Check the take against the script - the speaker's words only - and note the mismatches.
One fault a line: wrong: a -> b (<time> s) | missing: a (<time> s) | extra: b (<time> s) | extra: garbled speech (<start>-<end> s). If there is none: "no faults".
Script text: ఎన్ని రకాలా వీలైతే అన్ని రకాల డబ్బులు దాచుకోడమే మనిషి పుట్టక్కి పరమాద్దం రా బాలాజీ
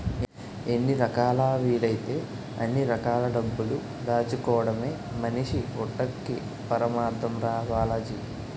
no faults